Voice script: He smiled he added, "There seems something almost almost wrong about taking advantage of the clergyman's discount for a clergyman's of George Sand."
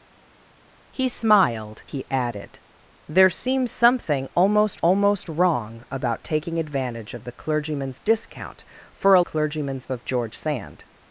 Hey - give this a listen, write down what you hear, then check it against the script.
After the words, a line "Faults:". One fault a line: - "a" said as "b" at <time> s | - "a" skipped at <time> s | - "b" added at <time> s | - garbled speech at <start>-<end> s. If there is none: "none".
He smiled he added, "There seems something almost almost wrong about taking advantage of the clergyman's discount for a clergyman's of George Sand."
Faults:
none